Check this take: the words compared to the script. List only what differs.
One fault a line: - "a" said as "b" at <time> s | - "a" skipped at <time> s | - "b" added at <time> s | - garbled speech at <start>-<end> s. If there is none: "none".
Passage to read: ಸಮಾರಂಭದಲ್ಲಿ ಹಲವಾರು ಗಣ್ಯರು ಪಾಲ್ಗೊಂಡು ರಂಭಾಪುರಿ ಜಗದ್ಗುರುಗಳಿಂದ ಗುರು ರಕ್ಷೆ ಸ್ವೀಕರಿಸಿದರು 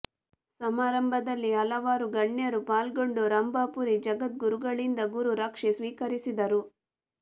none